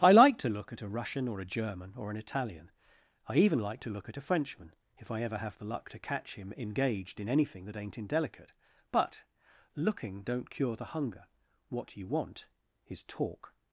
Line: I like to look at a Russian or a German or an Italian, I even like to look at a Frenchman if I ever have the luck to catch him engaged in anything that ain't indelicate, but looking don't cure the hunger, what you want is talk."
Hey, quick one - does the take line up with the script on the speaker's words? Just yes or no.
yes